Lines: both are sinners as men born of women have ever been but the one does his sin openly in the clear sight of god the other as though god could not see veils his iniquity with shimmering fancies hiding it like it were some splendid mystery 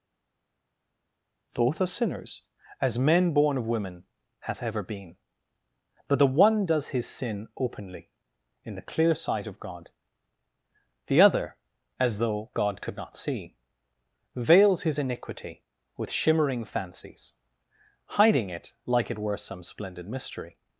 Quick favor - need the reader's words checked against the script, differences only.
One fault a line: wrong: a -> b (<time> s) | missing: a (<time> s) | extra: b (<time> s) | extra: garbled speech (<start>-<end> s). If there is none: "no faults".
wrong: have -> hath (4.4 s)